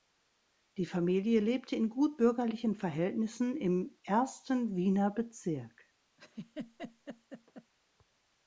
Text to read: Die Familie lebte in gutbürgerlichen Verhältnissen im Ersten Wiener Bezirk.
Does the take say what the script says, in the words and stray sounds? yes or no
no